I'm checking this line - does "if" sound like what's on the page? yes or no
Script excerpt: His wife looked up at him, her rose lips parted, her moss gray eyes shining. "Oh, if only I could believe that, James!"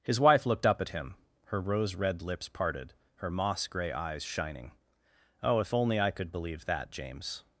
yes